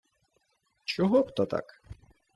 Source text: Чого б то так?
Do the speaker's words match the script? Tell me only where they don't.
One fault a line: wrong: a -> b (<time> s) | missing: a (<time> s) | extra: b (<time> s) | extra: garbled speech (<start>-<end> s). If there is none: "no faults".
no faults